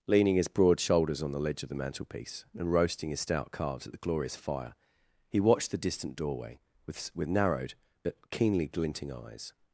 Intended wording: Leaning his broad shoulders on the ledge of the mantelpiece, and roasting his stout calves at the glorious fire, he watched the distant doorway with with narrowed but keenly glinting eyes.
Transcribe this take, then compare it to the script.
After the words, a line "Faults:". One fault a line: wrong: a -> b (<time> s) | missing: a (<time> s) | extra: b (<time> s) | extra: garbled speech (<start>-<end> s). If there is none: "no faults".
Leaning his broad shoulders on the ledge of the mantelpiece, and roasting his stout calves at the glorious fire, he watched the distant doorway with with narrowed but keenly glinting eyes.
Faults:
no faults